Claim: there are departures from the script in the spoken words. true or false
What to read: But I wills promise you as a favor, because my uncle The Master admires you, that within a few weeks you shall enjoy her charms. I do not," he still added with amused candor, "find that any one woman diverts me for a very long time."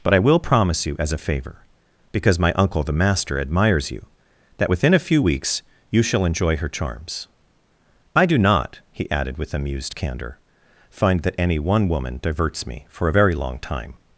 true